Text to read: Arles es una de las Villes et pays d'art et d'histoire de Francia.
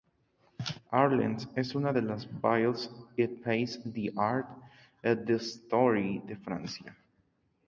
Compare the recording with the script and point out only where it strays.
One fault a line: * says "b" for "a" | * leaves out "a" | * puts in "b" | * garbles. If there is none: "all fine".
all fine